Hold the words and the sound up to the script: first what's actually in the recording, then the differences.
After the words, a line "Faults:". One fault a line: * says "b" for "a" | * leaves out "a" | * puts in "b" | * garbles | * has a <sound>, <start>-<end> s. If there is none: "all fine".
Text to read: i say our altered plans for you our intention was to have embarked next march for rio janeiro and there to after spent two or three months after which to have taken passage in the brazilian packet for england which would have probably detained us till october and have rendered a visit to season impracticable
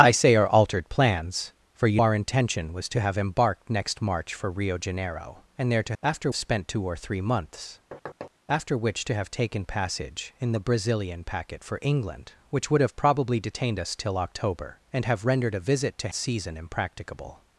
i say our altered plans for you our intention was to have embarked next march for rio janeiro and there to after spent two or three months after which to have taken passage in the brazilian packet for england which would have probably detained us till october and have rendered a visit to season impracticable
Faults:
* has a thud, 7.9-8.3 s